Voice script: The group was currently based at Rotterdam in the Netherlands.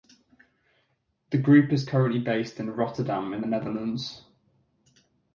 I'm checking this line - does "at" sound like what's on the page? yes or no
no